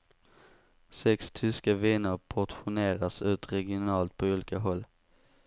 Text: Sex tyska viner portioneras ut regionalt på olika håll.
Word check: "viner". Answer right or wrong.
right